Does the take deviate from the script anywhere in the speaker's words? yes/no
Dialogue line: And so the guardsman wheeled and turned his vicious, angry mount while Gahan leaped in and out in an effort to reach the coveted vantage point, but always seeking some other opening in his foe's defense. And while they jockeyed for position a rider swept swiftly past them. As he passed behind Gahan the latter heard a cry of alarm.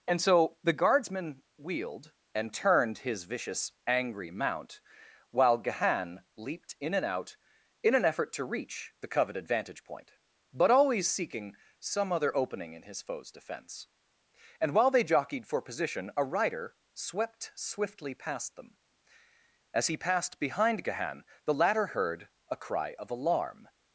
no